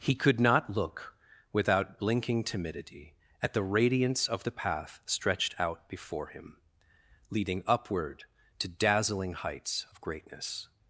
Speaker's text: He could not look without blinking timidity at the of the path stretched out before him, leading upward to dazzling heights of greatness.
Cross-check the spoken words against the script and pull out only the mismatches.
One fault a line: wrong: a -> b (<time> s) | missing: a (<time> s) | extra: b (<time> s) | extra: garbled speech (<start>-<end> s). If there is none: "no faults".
extra: radiance (3.6 s)